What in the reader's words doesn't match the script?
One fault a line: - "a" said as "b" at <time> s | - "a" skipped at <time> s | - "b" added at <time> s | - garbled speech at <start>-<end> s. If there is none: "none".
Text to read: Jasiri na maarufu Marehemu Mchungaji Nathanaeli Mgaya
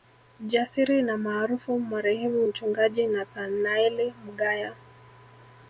none